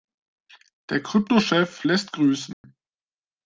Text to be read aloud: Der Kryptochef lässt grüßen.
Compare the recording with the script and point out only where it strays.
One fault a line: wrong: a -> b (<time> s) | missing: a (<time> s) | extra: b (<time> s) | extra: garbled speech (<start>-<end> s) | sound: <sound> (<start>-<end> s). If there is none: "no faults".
sound: dropout (2.5-2.6 s)